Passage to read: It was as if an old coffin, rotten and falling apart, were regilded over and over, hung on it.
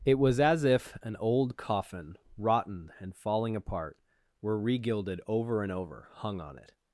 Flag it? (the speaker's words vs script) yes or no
no